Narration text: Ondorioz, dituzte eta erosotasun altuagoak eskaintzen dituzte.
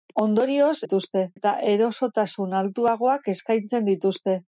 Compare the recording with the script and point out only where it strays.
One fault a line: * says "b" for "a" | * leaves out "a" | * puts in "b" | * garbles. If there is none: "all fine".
all fine